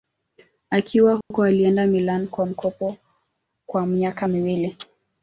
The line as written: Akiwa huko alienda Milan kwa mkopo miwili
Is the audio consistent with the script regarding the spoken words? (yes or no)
no